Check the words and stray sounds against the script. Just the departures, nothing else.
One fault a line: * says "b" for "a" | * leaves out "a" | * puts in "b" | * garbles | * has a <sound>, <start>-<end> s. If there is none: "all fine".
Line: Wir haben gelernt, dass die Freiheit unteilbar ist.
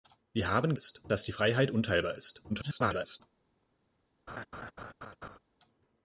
* says "ist" for "gelernt"
* garbles
* has a laugh, 4.3-5.4 s